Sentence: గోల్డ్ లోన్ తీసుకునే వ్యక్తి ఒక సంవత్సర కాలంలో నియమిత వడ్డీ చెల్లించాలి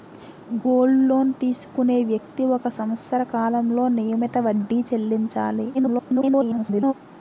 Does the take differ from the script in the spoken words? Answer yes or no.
yes